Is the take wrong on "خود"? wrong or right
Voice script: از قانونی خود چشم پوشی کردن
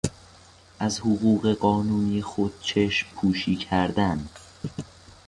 right